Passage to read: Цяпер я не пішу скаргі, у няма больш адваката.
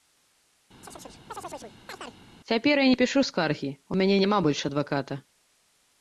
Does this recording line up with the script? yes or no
no